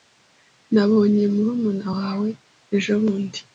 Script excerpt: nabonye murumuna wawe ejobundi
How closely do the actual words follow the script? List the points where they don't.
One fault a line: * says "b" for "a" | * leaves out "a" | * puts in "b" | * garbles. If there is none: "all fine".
all fine